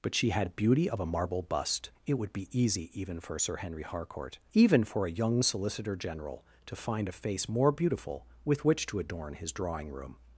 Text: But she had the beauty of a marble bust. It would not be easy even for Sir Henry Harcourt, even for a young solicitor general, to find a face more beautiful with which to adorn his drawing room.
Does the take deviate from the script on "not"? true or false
true